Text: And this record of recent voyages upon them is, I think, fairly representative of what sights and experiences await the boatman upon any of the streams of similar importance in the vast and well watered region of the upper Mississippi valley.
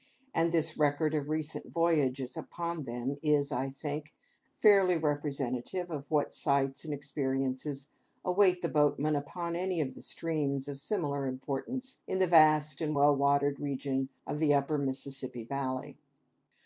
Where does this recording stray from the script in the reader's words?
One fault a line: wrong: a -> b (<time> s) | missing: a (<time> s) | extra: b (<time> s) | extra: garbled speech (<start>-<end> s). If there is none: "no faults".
no faults